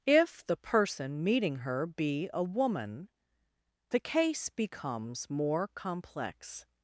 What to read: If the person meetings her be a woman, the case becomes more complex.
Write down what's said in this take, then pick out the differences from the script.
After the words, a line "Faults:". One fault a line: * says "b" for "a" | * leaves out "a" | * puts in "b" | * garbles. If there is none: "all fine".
If the person meeting her be a woman, the case becomes more complex.
Faults:
* says "meeting" for "meetings"